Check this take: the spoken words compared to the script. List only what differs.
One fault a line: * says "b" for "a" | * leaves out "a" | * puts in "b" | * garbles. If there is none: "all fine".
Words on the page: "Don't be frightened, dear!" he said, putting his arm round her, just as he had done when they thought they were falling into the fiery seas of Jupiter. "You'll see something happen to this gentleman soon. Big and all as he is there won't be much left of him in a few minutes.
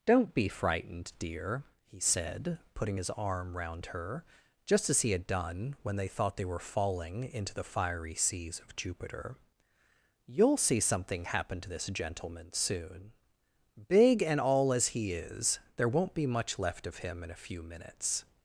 all fine